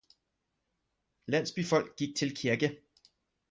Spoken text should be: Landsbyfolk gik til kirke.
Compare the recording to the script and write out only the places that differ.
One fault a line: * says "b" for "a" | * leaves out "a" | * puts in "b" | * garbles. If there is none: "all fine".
all fine